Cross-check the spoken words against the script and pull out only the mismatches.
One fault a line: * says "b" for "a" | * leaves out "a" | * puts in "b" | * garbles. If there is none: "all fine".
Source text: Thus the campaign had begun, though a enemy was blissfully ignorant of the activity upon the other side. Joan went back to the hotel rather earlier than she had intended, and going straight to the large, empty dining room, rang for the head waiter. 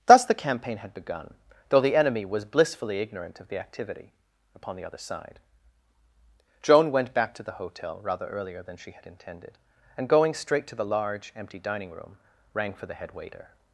* says "the" for "a"